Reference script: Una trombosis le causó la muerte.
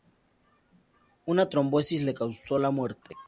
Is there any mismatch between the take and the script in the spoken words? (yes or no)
no